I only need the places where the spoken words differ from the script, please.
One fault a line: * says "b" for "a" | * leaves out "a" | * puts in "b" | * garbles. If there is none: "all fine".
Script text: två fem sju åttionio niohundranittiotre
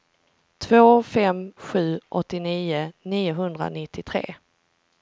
all fine